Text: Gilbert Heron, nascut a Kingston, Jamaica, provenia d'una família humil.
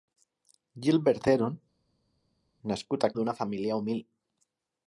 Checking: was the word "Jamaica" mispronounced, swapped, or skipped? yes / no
yes